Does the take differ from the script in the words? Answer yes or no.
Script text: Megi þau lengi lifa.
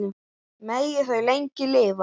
no